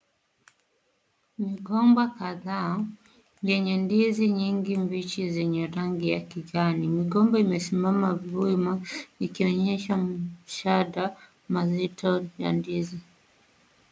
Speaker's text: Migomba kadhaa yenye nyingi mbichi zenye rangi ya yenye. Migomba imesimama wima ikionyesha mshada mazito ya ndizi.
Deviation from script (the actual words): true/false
true